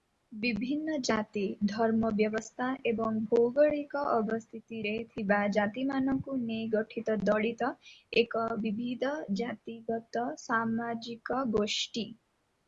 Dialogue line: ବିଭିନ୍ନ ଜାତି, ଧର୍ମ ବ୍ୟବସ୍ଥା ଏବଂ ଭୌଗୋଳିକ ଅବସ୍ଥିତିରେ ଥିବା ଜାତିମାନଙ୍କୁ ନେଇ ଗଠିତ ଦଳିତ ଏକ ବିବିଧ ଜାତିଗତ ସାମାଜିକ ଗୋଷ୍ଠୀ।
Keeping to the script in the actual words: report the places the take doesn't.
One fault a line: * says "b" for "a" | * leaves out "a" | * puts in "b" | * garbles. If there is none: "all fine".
all fine